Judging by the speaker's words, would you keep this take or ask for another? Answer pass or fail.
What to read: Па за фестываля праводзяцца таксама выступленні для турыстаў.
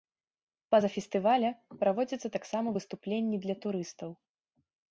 pass